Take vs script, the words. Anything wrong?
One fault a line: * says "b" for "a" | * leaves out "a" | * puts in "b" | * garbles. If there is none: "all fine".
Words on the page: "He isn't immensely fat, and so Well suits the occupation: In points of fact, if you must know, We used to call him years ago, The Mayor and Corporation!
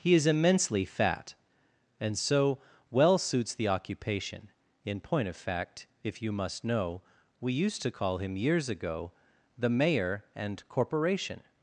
* says "is" for "isn't"
* says "point" for "points"